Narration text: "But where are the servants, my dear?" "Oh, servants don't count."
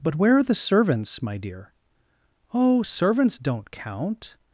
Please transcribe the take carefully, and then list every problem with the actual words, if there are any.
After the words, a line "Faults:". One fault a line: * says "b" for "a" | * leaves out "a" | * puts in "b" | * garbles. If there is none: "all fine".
"But where are the servants, my dear?" "Oh, servants don't count."
Faults:
all fine